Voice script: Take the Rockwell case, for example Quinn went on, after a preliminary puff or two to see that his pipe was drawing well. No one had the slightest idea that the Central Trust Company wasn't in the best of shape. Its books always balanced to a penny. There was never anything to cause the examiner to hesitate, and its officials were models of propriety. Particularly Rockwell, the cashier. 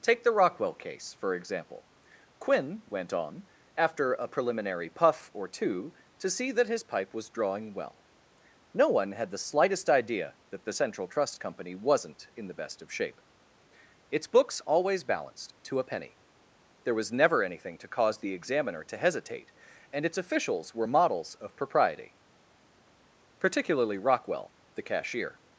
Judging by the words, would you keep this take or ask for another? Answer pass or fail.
pass